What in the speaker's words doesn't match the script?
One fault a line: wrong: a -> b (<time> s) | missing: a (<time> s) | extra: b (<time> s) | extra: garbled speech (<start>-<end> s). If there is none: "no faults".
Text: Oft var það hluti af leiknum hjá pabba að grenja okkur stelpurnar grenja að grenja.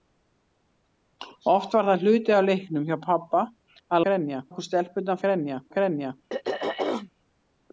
no faults